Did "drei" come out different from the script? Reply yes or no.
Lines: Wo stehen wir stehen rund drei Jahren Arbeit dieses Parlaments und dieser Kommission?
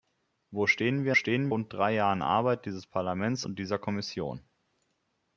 no